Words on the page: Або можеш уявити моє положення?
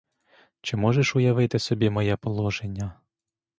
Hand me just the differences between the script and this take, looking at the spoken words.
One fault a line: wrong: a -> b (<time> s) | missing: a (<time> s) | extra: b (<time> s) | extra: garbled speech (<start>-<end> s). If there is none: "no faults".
wrong: Або -> Чи (0.6 s)
extra: собі (1.6 s)